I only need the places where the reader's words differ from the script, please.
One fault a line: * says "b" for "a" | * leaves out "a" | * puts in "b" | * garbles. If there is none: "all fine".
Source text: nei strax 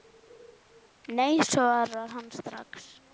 * puts in "svarar hann"